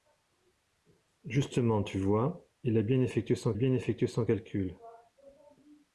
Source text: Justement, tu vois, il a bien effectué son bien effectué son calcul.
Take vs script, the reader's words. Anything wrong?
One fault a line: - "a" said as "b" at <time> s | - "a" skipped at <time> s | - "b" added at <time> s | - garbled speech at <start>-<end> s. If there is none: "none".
none